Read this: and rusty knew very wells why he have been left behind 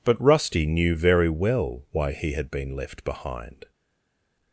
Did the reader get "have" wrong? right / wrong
wrong